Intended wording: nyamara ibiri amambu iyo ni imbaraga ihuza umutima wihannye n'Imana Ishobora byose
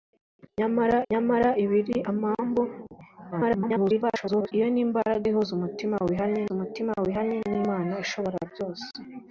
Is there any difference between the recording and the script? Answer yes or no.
yes